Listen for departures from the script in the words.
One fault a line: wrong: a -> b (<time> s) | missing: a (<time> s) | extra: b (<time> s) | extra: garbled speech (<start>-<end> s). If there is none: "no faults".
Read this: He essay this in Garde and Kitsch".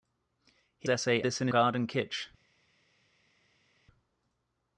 no faults